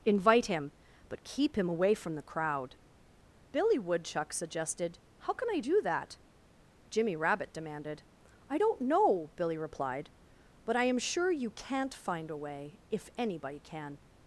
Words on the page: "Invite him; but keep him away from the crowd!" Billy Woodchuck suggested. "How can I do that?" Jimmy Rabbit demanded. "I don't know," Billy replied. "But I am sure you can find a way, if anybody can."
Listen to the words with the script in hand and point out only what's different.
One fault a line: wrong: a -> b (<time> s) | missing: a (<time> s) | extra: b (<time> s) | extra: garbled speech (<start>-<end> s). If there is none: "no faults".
wrong: can -> can't (11.5 s)